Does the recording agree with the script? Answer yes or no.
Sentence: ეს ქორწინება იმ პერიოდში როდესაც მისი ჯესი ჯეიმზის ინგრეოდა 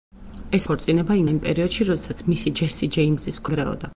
yes